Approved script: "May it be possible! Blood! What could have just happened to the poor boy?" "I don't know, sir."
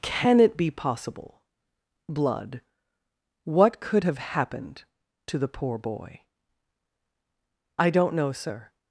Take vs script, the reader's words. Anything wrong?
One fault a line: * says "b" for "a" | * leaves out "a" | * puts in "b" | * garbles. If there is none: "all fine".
* says "Can" for "May"
* leaves out "just"